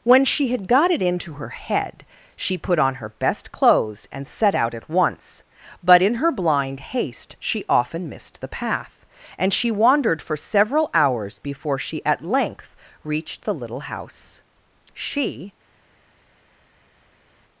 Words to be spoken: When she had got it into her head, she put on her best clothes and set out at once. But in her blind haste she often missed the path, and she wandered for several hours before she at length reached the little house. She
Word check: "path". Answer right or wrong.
right